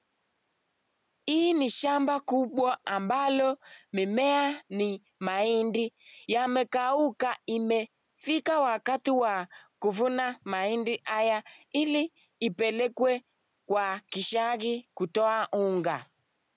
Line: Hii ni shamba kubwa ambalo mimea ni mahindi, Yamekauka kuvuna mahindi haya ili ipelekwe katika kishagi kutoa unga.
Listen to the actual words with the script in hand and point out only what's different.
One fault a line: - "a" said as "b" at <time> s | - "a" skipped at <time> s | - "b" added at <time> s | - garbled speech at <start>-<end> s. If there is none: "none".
- "imefika wakati wa" added at 7.4 s
- "katika" said as "kwa" at 13.7 s